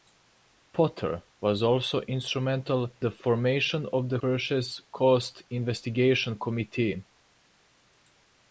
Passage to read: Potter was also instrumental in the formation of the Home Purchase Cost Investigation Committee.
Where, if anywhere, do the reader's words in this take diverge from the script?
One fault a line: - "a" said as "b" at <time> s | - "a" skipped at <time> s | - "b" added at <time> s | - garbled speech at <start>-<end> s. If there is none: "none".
- "in" skipped at 2.9 s
- "Home" skipped at 4.2 s